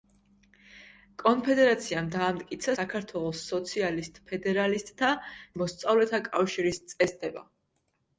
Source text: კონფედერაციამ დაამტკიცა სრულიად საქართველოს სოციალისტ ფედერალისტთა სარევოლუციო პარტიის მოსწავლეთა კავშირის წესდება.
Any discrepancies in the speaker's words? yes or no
yes